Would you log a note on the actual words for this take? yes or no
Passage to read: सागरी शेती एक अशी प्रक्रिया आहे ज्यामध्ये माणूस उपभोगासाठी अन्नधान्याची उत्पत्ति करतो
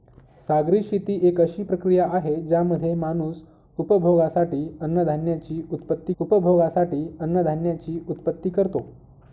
yes